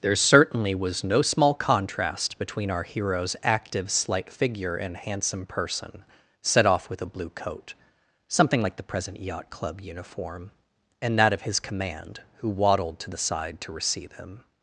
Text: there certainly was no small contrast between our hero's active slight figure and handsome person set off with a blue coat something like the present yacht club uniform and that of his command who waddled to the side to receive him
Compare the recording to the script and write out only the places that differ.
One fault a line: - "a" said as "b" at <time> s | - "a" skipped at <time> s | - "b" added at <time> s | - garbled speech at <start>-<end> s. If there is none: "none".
none